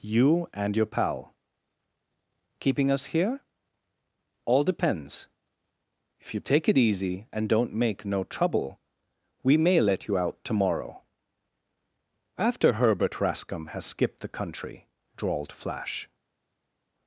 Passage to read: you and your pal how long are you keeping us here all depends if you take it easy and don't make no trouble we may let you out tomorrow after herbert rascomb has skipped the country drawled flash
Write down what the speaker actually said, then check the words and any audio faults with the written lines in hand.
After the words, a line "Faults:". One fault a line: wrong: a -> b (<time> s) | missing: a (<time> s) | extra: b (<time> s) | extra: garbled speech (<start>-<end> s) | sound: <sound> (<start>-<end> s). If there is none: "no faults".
you and your pal keeping us here all depends if you take it easy and don't make no trouble we may let you out tomorrow after herbert rascomb has skipped the country drawled flash
Faults:
missing: how long are you (1.4 s)